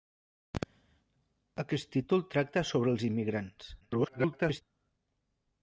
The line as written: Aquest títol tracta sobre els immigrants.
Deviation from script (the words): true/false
true